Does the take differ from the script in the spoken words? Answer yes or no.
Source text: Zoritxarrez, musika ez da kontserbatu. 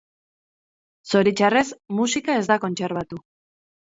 no